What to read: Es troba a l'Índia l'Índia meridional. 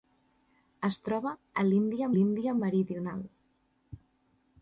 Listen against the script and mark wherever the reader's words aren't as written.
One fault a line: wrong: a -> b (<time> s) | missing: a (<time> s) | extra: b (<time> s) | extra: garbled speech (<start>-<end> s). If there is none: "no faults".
no faults